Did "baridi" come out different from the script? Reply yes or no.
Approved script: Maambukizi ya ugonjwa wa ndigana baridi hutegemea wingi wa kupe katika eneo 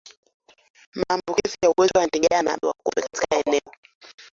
yes